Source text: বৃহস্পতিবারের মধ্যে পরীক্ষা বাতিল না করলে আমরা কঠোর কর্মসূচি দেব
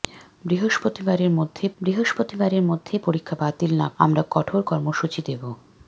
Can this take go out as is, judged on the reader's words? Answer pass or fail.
fail